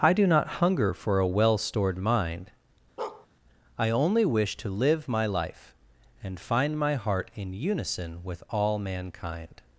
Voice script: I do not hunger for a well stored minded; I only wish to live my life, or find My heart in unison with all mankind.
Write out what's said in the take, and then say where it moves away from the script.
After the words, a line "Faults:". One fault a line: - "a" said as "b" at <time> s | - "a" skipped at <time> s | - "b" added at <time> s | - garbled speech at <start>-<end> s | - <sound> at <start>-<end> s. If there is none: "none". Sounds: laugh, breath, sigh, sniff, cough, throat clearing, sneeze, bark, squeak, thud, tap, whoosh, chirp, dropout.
I do not hunger for a well stored mind; I only wish to live my life, and find My heart in unison with all mankind.
Faults:
- "minded" said as "mind" at 2.0 s
- bark at 3.0-3.3 s
- "or" said as "and" at 6.2 s